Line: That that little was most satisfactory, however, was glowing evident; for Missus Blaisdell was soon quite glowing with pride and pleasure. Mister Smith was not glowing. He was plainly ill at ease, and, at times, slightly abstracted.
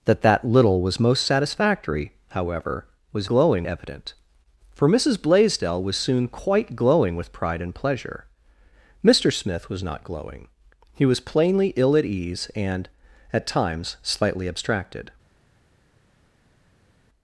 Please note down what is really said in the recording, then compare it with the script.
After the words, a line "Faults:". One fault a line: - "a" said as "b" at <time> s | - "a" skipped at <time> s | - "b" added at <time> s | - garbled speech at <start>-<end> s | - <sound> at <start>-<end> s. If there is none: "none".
That that little was most satisfactory, however, was glowing evident; for Missus Blaisdell was soon quite glowing with pride and pleasure. Mister Smith was not glowing. He was plainly ill at ease, and, at times, slightly abstracted.
Faults:
none